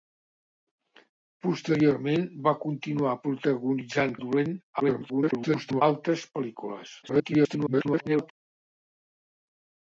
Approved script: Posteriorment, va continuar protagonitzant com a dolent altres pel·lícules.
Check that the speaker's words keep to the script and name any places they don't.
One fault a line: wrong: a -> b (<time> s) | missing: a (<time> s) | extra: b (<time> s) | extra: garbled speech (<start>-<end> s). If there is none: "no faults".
missing: com (4.2 s)
extra: garbled speech (4.8-5.8 s)
extra: garbled speech (7.0-8.3 s)